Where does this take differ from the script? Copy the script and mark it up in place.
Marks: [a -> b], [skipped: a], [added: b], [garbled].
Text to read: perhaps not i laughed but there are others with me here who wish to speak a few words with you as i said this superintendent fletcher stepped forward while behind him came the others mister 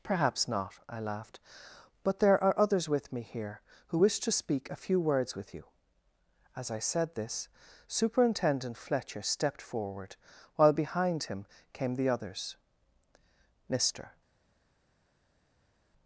perhaps not i laughed but there are others with me here who wish to speak a few words with you as i said this superintendent fletcher stepped forward while behind him came the others mister